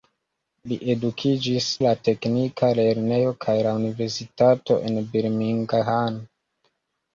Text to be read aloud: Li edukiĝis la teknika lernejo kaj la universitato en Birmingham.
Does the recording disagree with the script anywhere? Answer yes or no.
no